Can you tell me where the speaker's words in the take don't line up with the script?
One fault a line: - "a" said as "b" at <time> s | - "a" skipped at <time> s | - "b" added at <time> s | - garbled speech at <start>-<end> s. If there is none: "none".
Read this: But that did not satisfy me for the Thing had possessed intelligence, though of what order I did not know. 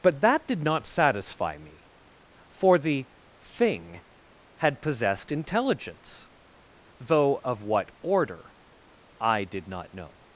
none